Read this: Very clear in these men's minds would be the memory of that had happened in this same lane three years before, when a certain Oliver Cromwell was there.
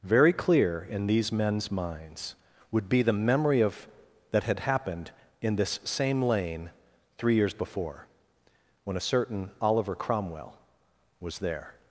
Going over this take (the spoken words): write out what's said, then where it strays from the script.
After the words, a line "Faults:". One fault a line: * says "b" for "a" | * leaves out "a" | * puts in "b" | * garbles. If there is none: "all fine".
Very clear in these men's minds would be the memory of that had happened in this same lane three years before, when a certain Oliver Cromwell was there.
Faults:
all fine